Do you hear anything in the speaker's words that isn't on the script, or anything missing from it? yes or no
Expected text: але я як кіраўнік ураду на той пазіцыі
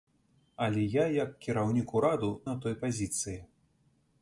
no